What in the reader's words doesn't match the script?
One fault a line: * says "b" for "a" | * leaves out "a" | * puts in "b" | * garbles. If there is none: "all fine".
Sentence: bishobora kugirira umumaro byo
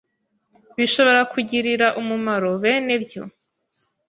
* puts in "bene"